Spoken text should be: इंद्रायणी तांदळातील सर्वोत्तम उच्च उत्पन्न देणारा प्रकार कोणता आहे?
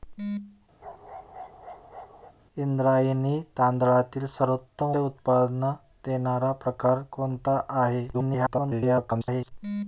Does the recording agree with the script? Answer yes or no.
no